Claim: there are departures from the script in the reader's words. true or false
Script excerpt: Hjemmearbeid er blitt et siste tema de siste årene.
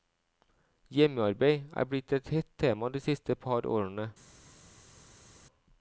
true